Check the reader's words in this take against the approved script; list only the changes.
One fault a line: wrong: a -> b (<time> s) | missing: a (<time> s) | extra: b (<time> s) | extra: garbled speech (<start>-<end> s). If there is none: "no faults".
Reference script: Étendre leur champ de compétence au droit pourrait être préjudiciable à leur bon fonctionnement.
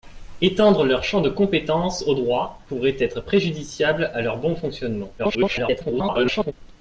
extra: garbled speech (5.2-6.5 s)